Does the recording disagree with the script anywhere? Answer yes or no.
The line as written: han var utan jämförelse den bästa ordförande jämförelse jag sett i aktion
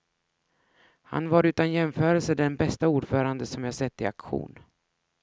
yes